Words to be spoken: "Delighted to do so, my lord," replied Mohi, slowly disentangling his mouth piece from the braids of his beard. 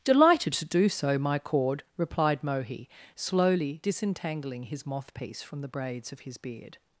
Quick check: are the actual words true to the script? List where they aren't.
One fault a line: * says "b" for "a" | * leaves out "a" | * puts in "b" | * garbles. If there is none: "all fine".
* says "cord" for "lord"
* says "moth" for "mouth"